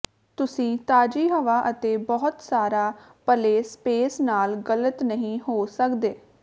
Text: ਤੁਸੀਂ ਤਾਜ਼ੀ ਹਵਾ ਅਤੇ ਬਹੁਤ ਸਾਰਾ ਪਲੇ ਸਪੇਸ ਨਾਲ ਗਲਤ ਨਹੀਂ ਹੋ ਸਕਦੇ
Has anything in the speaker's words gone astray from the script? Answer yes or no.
no